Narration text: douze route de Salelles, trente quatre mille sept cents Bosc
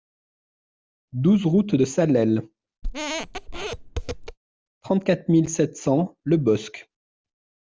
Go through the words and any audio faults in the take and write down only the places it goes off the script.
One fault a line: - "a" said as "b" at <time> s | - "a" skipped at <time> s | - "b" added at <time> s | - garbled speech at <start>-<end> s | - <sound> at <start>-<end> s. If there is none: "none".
- squeak at 2.8-4.4 s
- "Le" added at 6.2 s